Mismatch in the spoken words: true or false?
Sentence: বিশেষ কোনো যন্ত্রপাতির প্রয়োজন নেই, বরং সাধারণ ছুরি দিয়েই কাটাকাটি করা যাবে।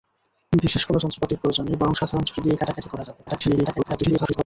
true